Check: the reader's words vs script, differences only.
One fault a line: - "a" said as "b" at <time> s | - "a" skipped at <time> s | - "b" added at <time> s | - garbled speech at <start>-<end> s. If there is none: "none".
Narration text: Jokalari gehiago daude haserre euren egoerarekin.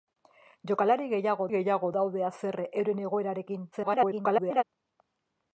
- "gehiago" added at 1.5 s
- garbled speech at 3.7-4.6 s